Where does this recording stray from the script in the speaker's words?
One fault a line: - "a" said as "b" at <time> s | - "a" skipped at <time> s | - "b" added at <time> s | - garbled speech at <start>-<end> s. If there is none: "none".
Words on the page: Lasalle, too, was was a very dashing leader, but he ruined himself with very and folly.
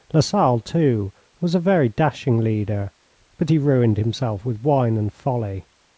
- "was" skipped at 1.5 s
- "very" said as "wine" at 4.6 s